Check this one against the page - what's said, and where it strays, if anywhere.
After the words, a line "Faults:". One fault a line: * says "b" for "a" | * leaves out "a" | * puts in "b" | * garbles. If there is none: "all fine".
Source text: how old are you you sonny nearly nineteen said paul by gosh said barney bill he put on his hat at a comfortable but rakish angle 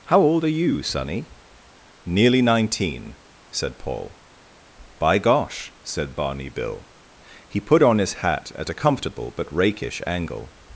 how old are you sonny nearly nineteen said paul by gosh said barney bill he put on his hat at a comfortable but rakish angle
Faults:
* leaves out "you"